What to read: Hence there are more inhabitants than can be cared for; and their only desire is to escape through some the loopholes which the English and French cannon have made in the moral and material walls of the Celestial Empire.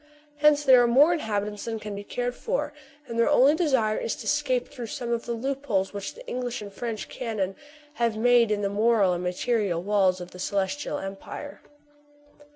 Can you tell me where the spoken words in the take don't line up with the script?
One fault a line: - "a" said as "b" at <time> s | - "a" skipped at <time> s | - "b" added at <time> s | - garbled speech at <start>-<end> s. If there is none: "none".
- "of" added at 5.1 s